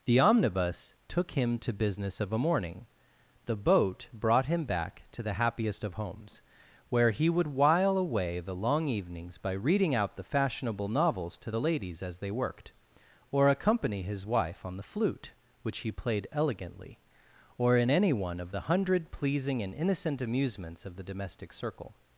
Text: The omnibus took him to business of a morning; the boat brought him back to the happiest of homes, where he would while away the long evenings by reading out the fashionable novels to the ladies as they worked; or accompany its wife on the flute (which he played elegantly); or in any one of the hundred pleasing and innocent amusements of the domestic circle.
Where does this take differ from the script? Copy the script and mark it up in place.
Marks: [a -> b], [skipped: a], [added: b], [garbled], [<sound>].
The omnibus took him to business of a morning; the boat brought him back to the happiest of homes, where he would while away the long evenings by reading out the fashionable novels to the ladies as they worked; or accompany [its -> his] wife on the flute (which he played elegantly); or in any one of the hundred pleasing and innocent amusements of the domestic circle.